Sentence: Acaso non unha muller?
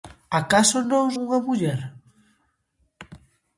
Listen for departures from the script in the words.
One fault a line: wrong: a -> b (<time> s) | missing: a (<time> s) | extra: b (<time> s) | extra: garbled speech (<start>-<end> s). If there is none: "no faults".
no faults